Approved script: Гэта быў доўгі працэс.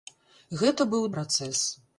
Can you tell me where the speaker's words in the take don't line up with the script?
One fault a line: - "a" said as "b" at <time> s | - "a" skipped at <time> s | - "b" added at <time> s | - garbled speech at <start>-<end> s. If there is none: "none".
- "доўгі" skipped at 1.1 s